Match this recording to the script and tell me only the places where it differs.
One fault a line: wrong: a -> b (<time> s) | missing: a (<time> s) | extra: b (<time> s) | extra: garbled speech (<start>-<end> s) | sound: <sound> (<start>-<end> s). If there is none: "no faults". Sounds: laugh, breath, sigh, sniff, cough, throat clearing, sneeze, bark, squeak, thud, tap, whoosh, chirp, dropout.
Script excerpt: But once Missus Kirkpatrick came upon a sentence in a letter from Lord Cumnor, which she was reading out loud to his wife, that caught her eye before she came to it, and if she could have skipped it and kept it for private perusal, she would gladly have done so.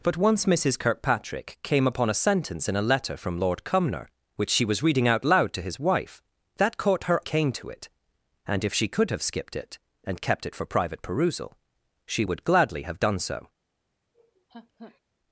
missing: eye before she (7.2 s)
sound: laugh (14.1-15.0 s)